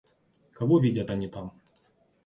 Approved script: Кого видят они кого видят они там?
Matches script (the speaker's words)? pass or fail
fail